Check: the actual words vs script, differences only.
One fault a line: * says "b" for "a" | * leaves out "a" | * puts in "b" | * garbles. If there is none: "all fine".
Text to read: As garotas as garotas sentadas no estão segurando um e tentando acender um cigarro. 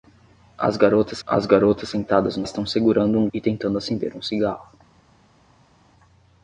all fine